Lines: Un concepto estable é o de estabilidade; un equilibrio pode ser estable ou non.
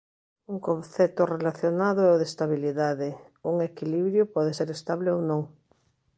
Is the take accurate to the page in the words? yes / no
no